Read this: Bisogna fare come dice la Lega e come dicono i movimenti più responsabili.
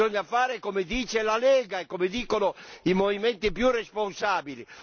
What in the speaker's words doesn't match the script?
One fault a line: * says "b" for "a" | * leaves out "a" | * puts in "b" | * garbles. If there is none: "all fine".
all fine